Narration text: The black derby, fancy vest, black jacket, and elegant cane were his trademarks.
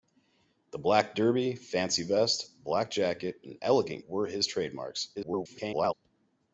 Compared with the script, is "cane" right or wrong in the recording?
wrong